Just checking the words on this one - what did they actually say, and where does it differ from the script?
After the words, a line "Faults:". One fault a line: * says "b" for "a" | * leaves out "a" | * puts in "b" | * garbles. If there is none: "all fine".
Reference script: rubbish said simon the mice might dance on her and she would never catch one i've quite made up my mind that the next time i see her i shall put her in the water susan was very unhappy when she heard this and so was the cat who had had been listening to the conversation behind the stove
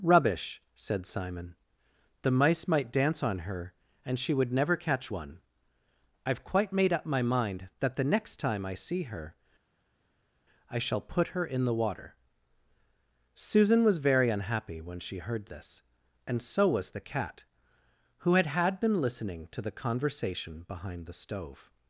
rubbish said simon the mice might dance on her and she would never catch one i've quite made up my mind that the next time i see her i shall put her in the water susan was very unhappy when she heard this and so was the cat who had had been listening to the conversation behind the stove
Faults:
all fine